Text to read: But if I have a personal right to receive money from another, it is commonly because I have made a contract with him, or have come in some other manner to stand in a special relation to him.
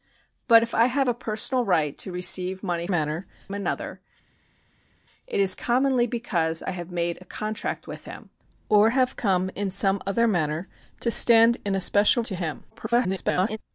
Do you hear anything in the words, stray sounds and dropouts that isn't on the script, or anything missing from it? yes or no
yes